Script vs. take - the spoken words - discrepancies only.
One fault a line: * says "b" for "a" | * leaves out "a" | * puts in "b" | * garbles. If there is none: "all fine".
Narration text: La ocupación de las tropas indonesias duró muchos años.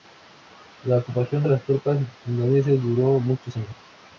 all fine